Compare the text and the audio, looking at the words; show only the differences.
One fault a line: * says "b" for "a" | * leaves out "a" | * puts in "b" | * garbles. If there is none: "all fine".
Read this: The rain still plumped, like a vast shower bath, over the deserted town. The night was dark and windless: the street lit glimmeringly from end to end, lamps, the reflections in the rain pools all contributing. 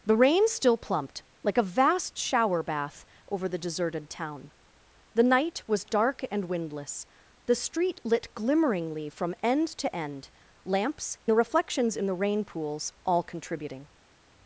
all fine